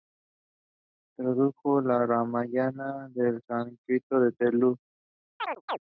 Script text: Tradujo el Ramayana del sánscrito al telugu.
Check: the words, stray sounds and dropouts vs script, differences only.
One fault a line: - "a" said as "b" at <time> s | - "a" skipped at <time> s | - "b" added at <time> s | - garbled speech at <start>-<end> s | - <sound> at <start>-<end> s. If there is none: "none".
- chirp at 5.4-5.8 s